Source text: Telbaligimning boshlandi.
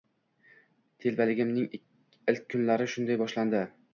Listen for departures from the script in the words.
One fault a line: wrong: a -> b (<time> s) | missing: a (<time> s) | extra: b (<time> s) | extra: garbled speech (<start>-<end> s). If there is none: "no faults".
extra: ilk kunlari shunday (2.3 s)